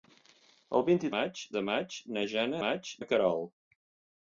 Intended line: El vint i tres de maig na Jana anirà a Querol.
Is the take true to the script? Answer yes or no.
no